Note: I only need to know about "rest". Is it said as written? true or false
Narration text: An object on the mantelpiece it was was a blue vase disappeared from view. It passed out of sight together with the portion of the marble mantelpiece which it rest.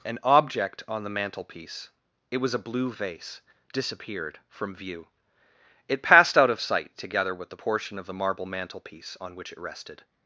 false